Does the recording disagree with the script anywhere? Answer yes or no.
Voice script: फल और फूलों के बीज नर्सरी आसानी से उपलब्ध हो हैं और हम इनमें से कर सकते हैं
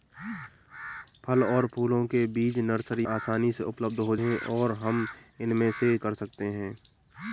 no